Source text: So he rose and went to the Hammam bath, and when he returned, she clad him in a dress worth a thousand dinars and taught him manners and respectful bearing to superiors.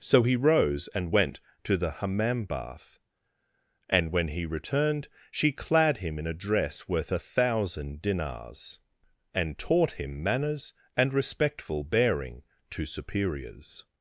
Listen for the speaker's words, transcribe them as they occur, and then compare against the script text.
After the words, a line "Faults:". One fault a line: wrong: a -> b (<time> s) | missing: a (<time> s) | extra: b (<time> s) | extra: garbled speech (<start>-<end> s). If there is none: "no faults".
So he rose and went to the Hammam bath, and when he returned, she clad him in a dress worth a thousand dinars and taught him manners and respectful bearing to superiors.
Faults:
no faults